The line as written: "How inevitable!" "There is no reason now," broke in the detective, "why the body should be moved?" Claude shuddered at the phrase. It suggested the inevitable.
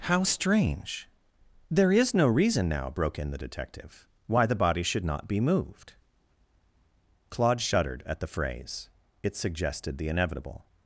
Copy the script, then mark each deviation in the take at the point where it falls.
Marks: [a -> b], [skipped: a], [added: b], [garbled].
"How [inevitable!" -> strange] "There is no reason now," broke in the detective, "why the body should [added: not] be moved?" Claude shuddered at the phrase. It suggested the inevitable.